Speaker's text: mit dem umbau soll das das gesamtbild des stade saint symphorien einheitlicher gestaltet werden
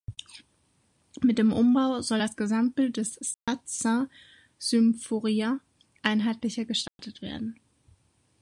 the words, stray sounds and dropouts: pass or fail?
fail